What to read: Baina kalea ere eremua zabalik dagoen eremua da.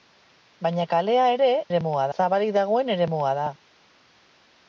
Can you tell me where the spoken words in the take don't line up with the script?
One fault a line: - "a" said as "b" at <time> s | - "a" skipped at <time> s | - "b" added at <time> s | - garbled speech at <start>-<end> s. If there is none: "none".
none